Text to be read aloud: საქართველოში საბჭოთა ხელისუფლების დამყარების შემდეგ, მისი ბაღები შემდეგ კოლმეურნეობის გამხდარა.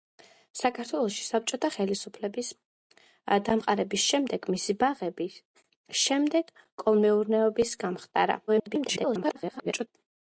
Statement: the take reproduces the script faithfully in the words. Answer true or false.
false